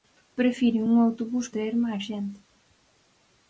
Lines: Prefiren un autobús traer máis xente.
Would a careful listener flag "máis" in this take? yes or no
no